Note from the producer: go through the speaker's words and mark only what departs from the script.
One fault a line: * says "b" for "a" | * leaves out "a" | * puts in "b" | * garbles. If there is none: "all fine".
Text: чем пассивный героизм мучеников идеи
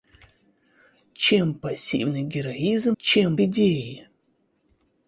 * says "чем" for "мучеников"